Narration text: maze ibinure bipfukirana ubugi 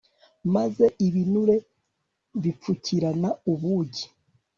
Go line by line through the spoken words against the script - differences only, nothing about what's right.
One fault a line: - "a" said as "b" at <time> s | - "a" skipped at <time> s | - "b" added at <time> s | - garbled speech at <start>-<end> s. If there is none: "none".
none